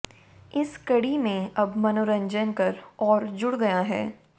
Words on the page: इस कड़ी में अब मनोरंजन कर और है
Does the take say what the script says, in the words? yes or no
no